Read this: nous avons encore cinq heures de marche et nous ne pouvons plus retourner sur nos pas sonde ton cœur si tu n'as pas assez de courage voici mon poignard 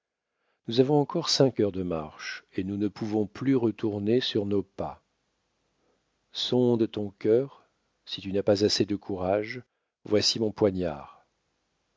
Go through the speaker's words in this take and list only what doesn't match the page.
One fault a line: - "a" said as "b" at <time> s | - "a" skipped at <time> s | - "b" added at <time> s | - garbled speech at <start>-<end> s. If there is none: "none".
none